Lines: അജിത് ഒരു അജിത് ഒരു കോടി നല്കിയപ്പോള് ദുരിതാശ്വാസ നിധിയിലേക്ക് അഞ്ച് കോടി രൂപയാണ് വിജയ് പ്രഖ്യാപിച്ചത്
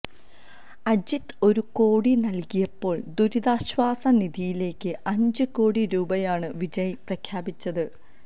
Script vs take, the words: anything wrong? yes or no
yes